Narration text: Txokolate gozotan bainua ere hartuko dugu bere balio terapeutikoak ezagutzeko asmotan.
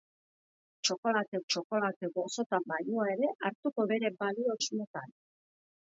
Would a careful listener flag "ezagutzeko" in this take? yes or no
yes